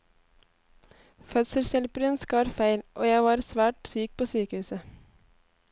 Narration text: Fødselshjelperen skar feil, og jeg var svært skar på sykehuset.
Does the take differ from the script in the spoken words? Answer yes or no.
yes